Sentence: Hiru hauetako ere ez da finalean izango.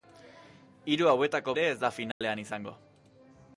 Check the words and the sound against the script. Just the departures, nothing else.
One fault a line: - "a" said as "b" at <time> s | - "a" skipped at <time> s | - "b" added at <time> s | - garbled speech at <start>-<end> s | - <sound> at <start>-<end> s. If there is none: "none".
- dropout at 2.1-2.2 s